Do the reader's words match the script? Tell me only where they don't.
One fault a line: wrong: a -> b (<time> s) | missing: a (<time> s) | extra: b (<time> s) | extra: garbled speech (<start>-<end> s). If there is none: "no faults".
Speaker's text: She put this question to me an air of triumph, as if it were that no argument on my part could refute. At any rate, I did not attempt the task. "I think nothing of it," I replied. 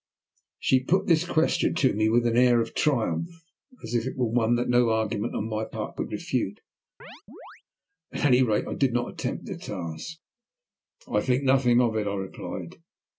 extra: with (2.1 s)
extra: one (4.3 s)